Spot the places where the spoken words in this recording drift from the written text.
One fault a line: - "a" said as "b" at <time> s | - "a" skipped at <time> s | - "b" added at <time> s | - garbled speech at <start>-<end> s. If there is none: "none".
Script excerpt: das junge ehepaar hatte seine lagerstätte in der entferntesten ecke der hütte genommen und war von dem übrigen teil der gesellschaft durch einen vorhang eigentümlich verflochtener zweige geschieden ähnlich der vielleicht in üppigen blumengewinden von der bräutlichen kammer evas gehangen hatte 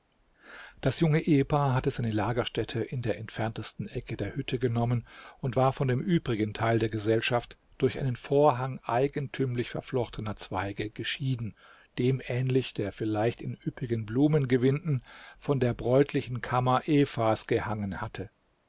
- "dem" added at 12.0 s